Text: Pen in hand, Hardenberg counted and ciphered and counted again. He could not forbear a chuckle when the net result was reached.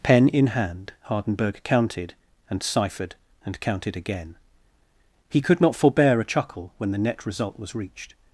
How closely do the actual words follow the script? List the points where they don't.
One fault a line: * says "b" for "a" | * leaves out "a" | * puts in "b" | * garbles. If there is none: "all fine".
all fine